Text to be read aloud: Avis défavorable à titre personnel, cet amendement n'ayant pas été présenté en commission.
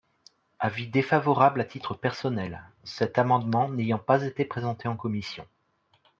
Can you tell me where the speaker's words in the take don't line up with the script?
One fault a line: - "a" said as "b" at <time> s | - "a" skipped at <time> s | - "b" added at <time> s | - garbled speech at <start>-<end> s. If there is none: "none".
none